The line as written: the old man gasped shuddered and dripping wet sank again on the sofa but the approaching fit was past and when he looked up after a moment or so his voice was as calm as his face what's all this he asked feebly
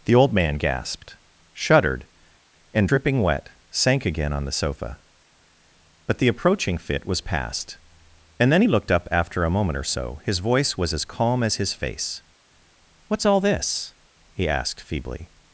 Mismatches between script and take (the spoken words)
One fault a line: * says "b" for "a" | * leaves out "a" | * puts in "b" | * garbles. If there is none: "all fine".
* says "then" for "when"